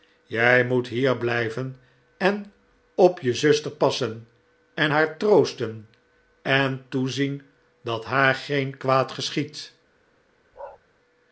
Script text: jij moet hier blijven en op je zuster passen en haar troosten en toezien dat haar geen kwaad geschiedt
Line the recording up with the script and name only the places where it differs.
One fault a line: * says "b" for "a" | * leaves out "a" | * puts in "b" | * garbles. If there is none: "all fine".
all fine